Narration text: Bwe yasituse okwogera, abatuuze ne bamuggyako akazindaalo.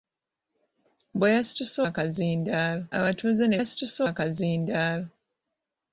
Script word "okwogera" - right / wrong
wrong